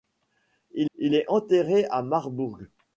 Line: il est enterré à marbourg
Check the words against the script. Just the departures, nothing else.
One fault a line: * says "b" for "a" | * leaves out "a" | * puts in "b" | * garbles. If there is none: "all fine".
* puts in "il"